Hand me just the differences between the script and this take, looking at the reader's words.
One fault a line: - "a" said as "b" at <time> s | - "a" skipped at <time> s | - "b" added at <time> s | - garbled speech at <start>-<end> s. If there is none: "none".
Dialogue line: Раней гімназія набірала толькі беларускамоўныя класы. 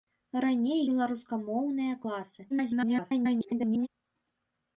- "гімназія набірала толькі" skipped at 0.8 s
- garbled speech at 2.5-3.9 s